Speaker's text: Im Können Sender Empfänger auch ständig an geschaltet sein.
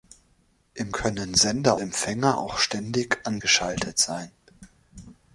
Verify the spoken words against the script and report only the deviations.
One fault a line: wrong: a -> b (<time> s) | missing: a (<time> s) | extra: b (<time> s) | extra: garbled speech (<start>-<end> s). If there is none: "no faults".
no faults